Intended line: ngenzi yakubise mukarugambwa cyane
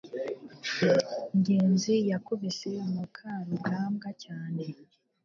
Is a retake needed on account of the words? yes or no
no